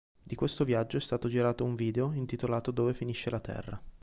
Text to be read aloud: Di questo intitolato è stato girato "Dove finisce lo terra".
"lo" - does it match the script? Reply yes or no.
no